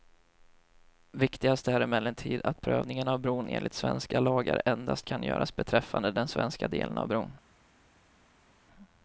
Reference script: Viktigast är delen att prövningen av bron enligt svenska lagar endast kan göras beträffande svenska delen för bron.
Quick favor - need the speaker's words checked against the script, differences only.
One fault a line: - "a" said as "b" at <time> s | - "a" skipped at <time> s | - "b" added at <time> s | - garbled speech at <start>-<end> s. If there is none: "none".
- "delen" said as "emellertid" at 1.8 s
- "den" added at 6.1 s
- "för" said as "av" at 7.0 s